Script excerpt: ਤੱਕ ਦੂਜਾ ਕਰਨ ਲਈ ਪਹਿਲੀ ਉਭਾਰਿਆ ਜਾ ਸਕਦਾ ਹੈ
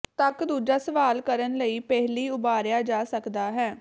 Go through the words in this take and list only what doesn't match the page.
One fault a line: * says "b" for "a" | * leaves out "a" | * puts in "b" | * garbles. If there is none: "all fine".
* puts in "ਸਵਾਲ"